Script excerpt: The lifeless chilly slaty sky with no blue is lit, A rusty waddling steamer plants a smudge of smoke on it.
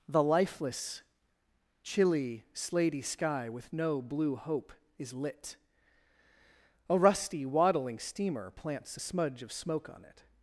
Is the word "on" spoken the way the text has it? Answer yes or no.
yes